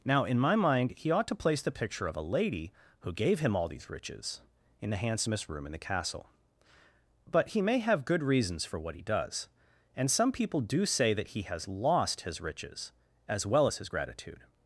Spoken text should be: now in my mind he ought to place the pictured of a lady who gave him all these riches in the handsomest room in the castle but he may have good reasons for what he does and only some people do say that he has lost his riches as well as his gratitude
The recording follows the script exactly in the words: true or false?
false